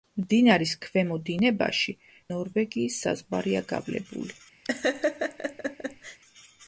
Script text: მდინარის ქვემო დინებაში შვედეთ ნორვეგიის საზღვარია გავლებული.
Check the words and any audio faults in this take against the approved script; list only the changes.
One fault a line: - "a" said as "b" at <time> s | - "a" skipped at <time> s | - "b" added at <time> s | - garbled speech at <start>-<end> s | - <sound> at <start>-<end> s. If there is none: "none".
- "შვედეთ" skipped at 1.9 s
- laugh at 4.6-6.2 s